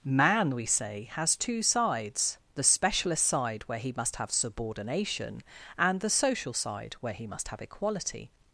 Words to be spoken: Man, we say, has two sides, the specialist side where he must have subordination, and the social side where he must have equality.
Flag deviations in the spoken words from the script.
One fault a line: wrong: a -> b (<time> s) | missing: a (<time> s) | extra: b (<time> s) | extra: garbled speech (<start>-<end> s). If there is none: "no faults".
no faults